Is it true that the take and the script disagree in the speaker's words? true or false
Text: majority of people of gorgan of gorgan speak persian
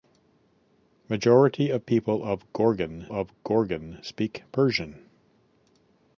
false